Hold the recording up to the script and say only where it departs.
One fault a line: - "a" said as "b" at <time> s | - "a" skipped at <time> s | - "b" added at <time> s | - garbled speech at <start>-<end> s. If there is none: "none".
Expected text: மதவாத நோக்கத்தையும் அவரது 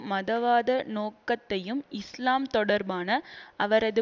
- "இஸ்லாம் தொடர்பான" added at 2.0 s